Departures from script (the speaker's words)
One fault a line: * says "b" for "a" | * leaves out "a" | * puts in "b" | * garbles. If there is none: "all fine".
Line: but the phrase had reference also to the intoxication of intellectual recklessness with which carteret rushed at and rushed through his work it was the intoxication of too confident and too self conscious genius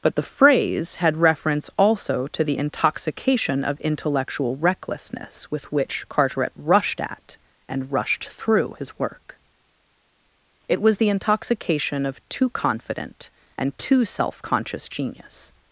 all fine